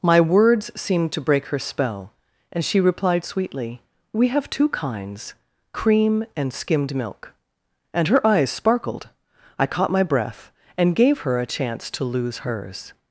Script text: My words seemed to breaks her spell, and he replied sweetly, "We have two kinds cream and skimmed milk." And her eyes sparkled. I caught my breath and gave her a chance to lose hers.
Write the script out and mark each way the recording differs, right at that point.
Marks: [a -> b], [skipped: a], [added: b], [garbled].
My words seemed to [breaks -> break] her spell, and [he -> she] replied sweetly, "We have two kinds cream and skimmed milk." And her eyes sparkled. I caught my breath and gave her a chance to lose hers.